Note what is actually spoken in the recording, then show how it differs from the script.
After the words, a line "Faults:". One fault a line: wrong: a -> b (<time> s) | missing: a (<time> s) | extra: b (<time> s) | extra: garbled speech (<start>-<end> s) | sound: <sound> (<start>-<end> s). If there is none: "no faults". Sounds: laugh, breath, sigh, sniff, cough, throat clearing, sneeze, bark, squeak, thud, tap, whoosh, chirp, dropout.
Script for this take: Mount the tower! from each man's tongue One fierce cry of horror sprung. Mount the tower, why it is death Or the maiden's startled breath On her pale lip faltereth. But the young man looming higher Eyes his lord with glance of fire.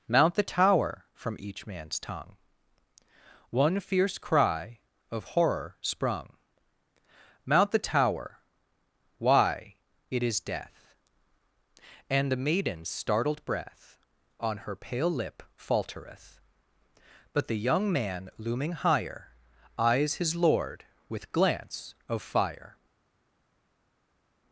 Mount the tower! from each man's tongue One fierce cry of horror sprung. Mount the tower, why it is death And the maiden's startled breath On her pale lip faltereth. But the young man looming higher Eyes his lord with glance of fire.
Faults:
wrong: Or -> And (12.1 s)